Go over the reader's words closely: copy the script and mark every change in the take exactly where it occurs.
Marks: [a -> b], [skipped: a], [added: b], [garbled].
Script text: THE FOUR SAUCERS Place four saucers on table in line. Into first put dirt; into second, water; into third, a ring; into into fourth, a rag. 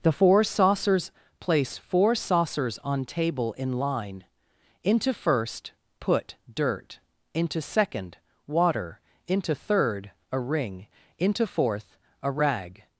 THE FOUR SAUCERS Place four saucers on table in line. Into first put dirt; into second, water; into third, a ring; into [skipped: into] fourth, a rag.